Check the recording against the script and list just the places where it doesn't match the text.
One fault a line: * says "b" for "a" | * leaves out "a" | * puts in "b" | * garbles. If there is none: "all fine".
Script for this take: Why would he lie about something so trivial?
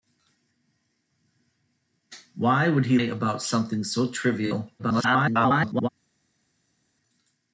* leaves out "lie"
* garbles